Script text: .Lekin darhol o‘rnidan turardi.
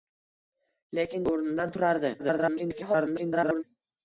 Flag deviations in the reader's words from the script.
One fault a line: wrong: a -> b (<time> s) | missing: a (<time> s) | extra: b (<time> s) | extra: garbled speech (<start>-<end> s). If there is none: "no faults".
missing: darhol (1.3 s)
extra: garbled speech (2.2-3.6 s)